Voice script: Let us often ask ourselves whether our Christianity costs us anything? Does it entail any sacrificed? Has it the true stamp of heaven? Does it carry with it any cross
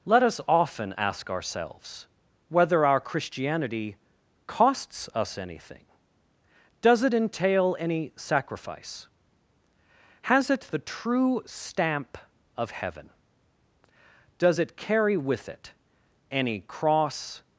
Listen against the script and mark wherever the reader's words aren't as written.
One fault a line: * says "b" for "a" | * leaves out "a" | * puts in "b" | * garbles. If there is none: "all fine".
* says "sacrifice" for "sacrificed"